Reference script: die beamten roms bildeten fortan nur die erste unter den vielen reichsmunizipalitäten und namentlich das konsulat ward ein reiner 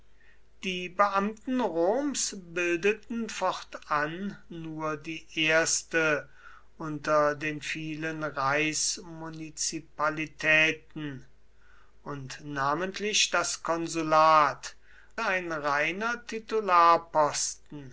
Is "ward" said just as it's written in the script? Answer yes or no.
no